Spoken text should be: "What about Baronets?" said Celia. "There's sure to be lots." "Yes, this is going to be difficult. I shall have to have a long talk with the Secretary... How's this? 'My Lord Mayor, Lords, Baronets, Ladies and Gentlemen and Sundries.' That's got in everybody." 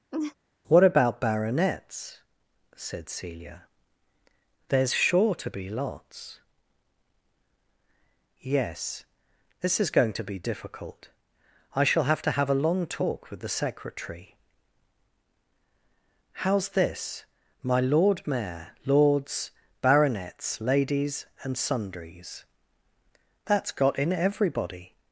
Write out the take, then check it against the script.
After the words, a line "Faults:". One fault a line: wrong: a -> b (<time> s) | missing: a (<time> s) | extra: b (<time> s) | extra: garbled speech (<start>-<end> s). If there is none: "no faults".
"What about Baronets?" said Celia. "There's sure to be lots." "Yes, this is going to be difficult. I shall have to have a long talk with the Secretary... How's this? 'My Lord Mayor, Lords, Baronets, Ladies and Sundries.' That's got in everybody."
Faults:
missing: Gentlemen and (21.6 s)